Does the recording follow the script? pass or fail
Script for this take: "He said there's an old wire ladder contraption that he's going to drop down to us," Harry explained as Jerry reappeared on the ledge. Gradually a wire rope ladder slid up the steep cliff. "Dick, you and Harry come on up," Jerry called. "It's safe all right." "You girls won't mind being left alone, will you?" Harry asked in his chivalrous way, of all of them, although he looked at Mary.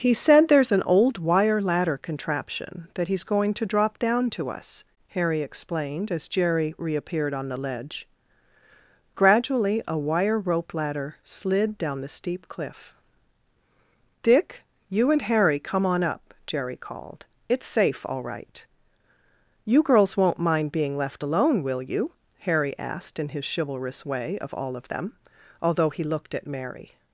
fail